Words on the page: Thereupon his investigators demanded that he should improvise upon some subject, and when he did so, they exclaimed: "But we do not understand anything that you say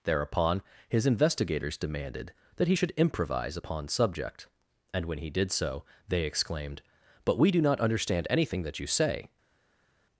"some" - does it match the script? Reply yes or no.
no